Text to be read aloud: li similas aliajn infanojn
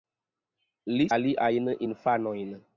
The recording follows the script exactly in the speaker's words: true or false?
false